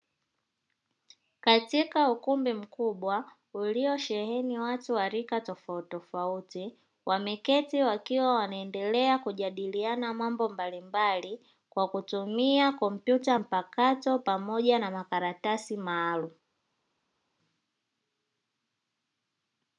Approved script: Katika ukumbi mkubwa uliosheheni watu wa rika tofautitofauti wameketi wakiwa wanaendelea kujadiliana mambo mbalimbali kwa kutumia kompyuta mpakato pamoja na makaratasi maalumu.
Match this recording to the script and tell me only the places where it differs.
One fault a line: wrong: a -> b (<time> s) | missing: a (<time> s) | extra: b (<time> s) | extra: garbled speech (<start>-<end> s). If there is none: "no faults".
no faults